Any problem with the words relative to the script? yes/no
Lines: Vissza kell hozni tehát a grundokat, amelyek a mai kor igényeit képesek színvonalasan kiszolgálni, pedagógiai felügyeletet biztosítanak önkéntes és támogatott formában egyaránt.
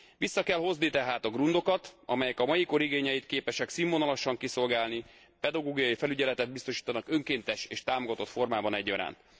no